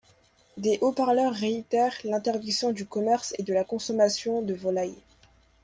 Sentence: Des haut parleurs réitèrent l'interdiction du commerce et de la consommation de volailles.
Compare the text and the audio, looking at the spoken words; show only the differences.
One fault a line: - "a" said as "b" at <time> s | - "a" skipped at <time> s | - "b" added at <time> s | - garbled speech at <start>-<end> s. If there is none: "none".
none